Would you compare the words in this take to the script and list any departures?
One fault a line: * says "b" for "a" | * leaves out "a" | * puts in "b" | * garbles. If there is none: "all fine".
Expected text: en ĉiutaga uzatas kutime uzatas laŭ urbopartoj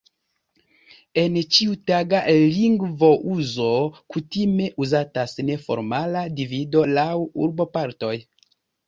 * says "lingvouzo" for "uzatas"
* puts in "neformala divido"